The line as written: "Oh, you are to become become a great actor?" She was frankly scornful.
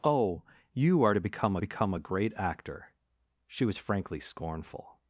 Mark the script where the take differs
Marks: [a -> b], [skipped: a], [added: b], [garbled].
"Oh, you are to become become a great actor?" She was frankly scornful.